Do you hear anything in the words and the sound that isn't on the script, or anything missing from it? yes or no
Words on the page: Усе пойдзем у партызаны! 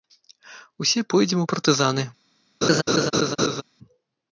yes